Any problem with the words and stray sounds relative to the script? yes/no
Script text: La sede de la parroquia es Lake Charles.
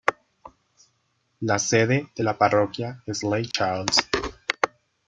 yes